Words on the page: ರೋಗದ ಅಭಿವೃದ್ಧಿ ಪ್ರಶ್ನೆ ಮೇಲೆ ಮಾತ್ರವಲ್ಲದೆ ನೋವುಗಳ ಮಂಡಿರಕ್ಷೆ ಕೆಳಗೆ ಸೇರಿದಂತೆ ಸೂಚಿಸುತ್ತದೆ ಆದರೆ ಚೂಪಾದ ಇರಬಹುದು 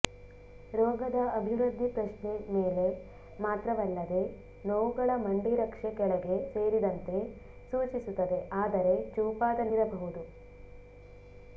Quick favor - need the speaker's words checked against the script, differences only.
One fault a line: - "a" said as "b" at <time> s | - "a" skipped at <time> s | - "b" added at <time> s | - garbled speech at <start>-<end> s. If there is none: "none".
none